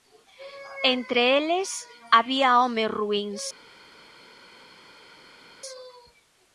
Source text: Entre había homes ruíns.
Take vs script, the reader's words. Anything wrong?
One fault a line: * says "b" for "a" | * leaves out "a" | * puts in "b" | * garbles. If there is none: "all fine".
* puts in "eles"